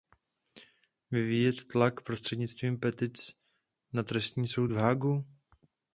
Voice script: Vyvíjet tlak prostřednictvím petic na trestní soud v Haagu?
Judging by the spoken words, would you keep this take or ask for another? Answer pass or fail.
pass